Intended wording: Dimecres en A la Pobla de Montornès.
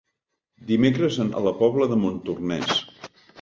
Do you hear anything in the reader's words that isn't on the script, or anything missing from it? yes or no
no